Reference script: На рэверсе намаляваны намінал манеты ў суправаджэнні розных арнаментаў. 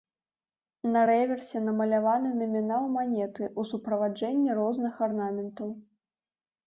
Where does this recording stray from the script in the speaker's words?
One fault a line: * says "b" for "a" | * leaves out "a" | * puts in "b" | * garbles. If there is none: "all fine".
all fine